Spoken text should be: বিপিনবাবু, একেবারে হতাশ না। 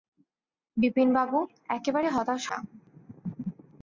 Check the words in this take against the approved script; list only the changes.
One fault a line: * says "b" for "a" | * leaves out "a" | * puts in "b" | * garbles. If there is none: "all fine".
all fine